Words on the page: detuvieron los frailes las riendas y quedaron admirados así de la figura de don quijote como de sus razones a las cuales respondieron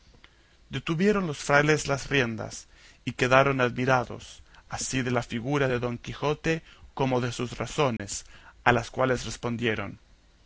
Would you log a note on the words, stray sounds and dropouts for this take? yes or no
yes